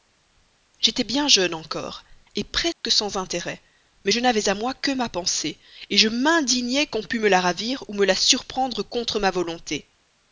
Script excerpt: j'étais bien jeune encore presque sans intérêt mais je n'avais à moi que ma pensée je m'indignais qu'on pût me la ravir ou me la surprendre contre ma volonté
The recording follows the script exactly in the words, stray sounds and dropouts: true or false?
false